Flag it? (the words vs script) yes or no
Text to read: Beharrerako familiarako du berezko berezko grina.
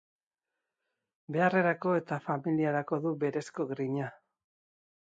yes